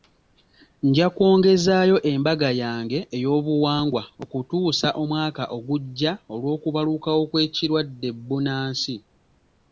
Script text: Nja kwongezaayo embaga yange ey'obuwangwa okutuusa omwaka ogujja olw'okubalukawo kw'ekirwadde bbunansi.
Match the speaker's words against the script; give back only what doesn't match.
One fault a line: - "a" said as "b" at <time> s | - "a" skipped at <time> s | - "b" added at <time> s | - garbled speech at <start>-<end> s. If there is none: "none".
none